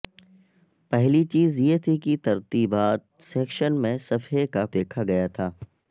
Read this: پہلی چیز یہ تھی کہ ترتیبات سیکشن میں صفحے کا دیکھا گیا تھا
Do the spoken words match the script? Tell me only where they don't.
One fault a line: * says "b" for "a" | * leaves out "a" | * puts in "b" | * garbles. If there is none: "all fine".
all fine